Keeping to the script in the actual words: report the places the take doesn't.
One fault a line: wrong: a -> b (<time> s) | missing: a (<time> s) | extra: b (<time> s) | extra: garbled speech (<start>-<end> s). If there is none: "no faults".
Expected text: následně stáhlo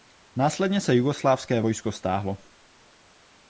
extra: se jugoslávské vojsko (0.8 s)